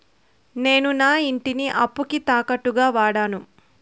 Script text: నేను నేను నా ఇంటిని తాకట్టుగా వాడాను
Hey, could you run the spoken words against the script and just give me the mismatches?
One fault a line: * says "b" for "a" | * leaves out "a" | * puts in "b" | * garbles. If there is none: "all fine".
* leaves out "నేను"
* puts in "అప్పుకి"